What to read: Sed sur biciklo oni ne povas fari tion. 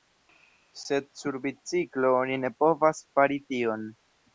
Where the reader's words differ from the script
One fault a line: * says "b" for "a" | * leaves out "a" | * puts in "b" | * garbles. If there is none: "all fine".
all fine